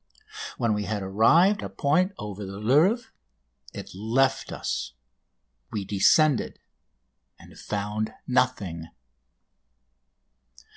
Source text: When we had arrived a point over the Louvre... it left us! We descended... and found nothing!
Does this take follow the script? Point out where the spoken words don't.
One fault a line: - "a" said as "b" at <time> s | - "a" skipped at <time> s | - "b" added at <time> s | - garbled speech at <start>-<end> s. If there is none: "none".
none